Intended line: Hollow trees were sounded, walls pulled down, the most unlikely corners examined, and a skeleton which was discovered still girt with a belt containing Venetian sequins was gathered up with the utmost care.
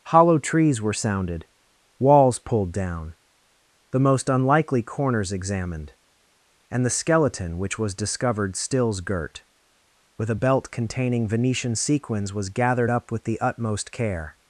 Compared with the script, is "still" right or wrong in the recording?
wrong